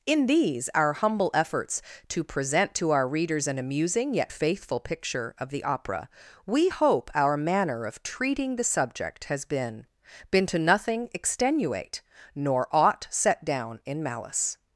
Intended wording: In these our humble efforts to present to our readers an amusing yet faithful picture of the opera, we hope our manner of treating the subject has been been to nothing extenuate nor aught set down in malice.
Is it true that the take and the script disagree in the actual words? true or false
false